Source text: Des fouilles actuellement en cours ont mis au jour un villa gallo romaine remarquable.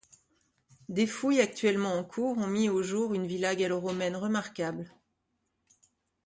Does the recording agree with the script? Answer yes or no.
no